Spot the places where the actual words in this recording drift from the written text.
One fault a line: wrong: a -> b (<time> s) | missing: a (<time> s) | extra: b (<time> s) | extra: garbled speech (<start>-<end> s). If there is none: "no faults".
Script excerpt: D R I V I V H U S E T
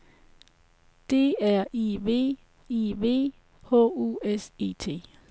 no faults